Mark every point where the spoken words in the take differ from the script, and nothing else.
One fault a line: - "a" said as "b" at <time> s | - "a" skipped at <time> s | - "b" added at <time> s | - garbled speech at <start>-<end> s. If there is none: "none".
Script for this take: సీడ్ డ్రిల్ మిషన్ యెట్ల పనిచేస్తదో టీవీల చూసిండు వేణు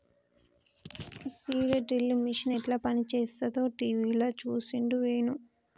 none